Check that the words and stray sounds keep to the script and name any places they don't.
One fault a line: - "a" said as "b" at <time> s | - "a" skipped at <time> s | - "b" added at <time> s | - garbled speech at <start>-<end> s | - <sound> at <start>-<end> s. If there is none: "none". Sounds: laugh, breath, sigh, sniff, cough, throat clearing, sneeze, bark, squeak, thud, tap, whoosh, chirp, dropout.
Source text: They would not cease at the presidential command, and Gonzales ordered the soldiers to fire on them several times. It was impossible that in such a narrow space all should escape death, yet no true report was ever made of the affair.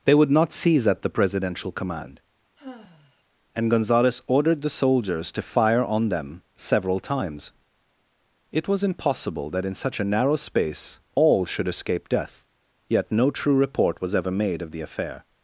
- "cease" said as "seize" at 0.5 s
- sigh at 2.6-3.2 s